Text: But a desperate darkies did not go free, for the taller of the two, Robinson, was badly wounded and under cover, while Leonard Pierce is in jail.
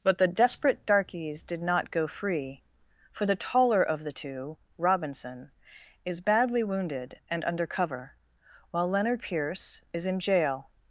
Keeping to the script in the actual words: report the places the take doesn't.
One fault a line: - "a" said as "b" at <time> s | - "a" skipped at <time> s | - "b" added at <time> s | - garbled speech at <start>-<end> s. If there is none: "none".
- "a" said as "the" at 0.2 s
- "was" said as "is" at 6.0 s